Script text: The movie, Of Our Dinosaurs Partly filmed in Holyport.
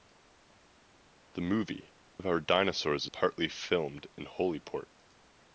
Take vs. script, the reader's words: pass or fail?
pass